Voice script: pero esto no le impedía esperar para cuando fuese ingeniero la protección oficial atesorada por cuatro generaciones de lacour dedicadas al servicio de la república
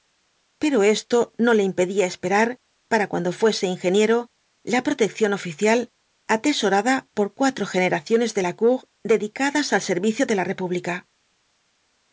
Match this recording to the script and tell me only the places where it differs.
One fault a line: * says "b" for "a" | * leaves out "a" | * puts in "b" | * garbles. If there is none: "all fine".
all fine